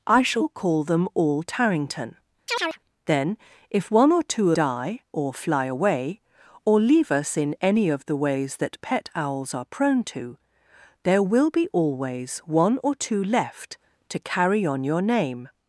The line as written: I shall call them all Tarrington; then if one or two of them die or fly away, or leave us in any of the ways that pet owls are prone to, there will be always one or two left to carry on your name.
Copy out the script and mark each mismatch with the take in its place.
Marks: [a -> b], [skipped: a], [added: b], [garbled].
I shall call them all Tarrington; then if one or two [skipped: of them] die or fly away, or leave us in any of the ways that pet owls are prone to, there will be always one or two left to carry on your name.